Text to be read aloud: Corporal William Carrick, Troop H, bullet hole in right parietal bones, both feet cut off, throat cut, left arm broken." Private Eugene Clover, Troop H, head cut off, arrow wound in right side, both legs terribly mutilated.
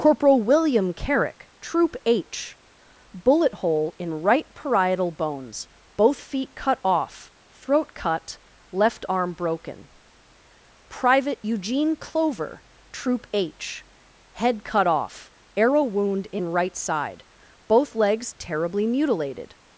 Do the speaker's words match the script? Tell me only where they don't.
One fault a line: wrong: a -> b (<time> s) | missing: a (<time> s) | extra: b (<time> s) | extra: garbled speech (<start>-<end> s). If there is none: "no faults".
no faults